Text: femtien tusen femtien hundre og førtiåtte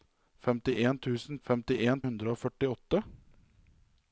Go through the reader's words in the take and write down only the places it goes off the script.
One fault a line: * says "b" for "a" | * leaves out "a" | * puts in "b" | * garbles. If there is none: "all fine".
all fine